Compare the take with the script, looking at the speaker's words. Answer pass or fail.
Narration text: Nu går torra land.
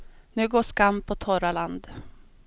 fail